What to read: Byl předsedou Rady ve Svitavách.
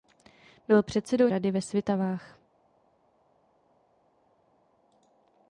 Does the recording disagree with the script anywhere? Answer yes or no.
no